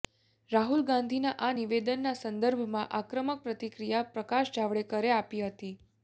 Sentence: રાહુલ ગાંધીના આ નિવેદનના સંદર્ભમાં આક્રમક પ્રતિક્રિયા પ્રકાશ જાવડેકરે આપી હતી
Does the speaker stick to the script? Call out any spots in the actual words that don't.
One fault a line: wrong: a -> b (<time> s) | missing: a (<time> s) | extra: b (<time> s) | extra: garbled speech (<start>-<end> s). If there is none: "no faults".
no faults